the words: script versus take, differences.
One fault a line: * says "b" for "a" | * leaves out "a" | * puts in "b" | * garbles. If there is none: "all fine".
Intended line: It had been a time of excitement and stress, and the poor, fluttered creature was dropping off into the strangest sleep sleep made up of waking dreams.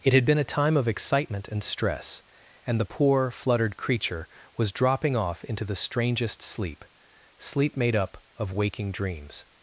all fine